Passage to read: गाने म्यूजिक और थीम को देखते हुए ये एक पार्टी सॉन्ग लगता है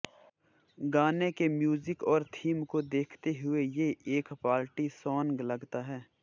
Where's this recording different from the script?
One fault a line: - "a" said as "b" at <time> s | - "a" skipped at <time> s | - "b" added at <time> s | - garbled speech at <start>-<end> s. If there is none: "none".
- "के" added at 1.3 s